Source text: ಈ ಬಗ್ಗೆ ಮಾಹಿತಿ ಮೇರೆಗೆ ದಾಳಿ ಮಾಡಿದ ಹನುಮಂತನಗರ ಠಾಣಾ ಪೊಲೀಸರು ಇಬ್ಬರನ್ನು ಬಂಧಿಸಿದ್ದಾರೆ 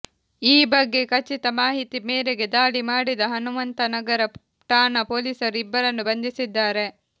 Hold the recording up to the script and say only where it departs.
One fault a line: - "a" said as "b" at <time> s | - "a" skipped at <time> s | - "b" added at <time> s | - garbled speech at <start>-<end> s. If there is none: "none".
- "ಖಚಿತ" added at 1.1 s